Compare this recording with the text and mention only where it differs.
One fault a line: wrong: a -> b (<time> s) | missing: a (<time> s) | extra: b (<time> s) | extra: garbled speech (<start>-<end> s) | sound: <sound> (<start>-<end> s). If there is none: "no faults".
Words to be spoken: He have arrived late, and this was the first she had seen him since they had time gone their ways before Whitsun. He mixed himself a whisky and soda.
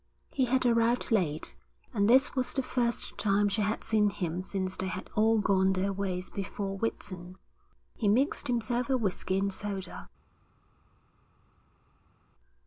wrong: have -> had (0.5 s)
extra: time (3.2 s)
wrong: time -> all (5.1 s)